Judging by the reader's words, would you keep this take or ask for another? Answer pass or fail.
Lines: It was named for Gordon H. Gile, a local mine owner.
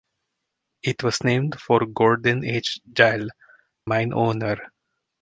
fail